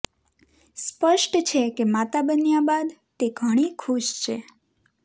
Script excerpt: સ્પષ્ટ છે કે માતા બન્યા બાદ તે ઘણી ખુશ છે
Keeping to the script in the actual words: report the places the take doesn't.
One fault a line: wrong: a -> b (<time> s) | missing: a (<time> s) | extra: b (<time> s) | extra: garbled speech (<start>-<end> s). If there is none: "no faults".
no faults